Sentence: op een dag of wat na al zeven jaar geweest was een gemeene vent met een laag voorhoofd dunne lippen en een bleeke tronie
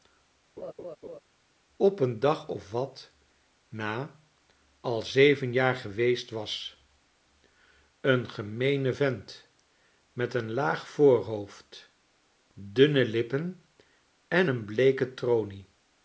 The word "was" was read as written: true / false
true